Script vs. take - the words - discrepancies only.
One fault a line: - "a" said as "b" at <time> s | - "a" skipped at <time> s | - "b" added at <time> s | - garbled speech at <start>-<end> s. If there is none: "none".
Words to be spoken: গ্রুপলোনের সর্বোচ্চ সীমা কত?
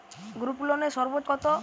- "সীমা" skipped at 1.3 s